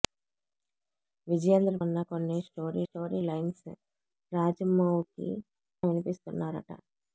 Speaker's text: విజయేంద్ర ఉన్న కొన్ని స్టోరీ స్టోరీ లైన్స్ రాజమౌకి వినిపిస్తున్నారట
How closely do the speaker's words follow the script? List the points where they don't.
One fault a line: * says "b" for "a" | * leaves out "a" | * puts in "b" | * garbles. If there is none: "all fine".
all fine